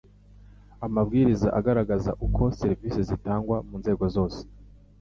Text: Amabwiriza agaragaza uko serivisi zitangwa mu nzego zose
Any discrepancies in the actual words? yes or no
no